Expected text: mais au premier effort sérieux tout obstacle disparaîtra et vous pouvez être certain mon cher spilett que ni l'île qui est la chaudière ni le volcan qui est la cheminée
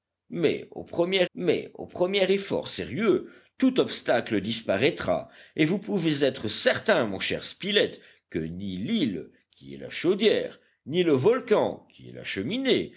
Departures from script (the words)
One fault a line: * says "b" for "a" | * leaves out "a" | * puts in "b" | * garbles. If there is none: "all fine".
* puts in "mais au premier"